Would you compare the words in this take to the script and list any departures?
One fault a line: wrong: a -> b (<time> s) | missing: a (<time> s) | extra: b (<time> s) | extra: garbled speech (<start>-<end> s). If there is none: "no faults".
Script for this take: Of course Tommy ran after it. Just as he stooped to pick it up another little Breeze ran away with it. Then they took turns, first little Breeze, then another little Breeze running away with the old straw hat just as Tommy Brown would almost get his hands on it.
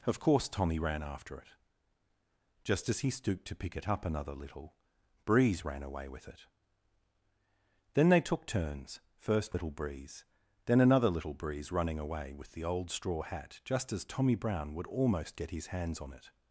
no faults